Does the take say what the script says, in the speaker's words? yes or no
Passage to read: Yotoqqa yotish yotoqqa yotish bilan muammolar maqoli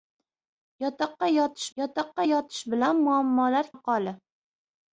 yes